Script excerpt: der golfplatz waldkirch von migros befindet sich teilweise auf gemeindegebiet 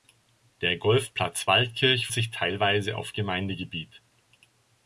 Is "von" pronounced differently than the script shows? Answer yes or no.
yes